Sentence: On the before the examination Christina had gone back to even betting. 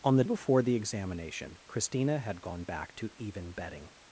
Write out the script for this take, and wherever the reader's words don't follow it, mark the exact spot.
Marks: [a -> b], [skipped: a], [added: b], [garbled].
On the before the examination Christina had gone back to even betting.